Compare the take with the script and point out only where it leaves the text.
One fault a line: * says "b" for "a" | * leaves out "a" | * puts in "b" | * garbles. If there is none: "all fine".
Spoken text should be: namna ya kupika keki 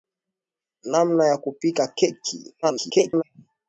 * garbles